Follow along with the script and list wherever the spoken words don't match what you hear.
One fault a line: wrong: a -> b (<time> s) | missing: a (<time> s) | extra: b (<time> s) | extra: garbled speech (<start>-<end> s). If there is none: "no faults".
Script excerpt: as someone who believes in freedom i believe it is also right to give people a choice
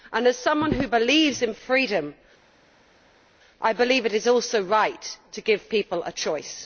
no faults